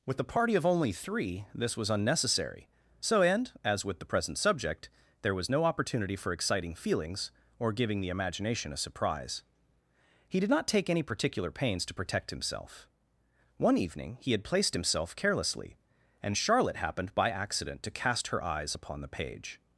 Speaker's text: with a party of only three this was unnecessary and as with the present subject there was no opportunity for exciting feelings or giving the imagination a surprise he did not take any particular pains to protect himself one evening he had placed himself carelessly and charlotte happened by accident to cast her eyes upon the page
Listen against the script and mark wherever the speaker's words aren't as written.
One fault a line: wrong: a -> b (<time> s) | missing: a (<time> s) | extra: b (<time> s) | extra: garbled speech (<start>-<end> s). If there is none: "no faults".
extra: so (3.0 s)